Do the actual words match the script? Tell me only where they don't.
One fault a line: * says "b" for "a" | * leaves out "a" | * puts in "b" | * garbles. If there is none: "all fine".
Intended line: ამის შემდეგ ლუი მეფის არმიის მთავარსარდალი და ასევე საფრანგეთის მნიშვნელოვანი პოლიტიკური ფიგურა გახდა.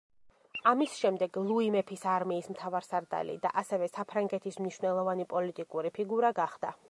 all fine